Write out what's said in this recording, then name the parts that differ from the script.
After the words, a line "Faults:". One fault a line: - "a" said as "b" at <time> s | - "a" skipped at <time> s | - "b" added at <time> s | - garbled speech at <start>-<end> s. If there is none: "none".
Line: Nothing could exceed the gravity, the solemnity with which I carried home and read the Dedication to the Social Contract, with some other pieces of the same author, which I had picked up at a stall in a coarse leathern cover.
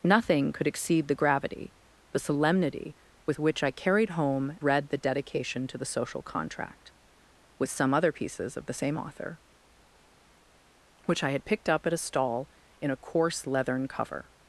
Nothing could exceed the gravity, the solemnity with which I carried home read the Dedication to the Social Contract, with some other pieces of the same author, which I had picked up at a stall in a coarse leathern cover.
Faults:
- "and" skipped at 4.6 s